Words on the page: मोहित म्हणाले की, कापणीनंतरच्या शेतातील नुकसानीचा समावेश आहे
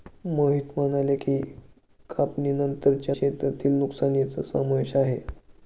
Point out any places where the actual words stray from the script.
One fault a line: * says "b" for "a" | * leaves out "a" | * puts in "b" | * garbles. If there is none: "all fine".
all fine